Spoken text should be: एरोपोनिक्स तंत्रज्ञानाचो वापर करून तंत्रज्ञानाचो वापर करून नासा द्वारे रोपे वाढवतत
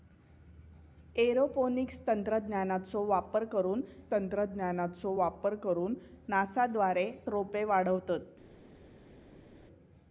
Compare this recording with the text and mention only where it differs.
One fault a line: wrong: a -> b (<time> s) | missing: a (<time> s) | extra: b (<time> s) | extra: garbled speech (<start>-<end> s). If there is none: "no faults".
no faults